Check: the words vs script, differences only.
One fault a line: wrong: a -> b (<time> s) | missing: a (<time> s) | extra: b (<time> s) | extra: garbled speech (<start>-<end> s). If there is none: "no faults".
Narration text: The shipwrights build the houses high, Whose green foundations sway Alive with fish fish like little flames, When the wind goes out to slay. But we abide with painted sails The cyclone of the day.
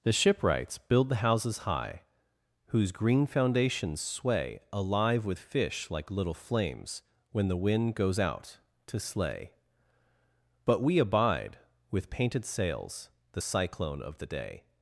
missing: fish (5.9 s)